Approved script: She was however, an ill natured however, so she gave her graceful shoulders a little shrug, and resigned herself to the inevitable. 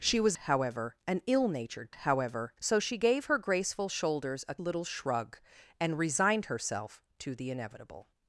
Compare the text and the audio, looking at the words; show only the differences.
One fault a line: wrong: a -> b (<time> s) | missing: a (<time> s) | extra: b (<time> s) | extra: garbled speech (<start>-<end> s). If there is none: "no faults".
no faults